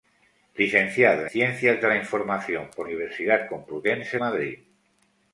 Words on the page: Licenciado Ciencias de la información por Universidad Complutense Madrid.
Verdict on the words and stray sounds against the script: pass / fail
pass